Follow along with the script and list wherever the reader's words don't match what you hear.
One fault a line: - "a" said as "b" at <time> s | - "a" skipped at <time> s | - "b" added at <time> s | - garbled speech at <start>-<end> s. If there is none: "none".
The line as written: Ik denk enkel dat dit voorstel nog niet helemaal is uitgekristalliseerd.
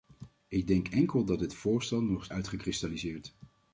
- "niet helemaal is" skipped at 2.3 s